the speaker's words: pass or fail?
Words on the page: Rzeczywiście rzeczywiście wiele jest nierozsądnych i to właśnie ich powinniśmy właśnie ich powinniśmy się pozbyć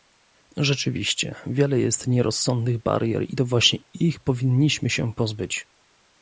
fail